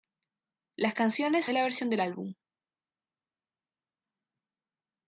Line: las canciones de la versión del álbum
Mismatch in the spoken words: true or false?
false